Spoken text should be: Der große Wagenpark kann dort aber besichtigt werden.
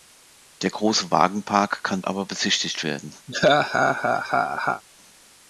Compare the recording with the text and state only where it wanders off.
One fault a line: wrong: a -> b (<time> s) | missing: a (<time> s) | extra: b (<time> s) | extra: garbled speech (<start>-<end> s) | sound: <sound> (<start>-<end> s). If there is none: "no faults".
missing: dort (2.0 s)
sound: laugh (3.3-4.8 s)